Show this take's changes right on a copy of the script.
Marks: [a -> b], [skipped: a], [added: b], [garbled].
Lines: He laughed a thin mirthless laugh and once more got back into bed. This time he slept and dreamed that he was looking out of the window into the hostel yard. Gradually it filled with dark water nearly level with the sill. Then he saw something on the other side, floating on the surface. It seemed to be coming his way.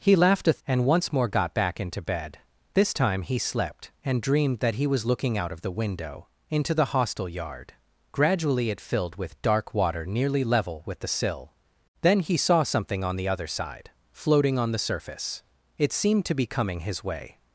He laughed a [skipped: thin mirthless laugh] and once more got back into bed. This time he slept and dreamed that he was looking out of the window into the hostel yard. Gradually it filled with dark water nearly level with the sill. Then he saw something on the other side, floating on the surface. It seemed to be coming his way.